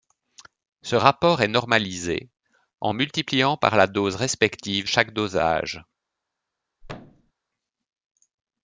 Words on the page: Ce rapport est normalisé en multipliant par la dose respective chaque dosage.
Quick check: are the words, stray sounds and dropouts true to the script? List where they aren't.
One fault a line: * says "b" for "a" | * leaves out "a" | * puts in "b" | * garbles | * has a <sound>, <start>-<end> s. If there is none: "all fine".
* has a thud, 6.8-7.3 s